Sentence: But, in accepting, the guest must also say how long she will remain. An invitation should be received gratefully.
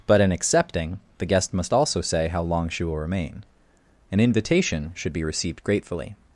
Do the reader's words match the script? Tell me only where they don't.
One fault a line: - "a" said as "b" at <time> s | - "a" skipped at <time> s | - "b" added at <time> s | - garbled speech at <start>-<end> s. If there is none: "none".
none